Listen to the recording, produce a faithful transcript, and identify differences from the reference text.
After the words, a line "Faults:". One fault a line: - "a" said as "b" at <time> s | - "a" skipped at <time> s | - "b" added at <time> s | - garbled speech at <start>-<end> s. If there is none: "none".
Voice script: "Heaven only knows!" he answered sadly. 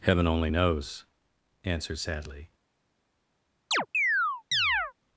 "Heaven only knows!" answered sadly.
Faults:
- "he" skipped at 1.1 s